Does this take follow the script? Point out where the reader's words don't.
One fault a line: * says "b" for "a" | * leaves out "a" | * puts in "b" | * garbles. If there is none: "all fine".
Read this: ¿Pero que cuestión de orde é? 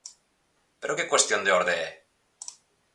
all fine